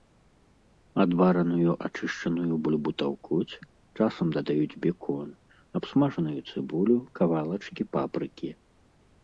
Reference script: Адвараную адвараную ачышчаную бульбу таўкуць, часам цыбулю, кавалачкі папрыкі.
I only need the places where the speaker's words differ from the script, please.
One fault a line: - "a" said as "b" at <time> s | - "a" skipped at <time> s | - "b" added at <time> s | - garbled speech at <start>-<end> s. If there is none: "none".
- "адвараную" skipped at 1.7 s
- "дадаюць бекон абсмажаную" added at 4.4 s